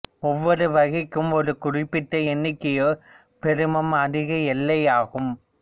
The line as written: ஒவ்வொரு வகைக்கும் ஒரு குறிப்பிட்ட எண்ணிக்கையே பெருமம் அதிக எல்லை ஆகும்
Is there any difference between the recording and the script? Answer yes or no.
no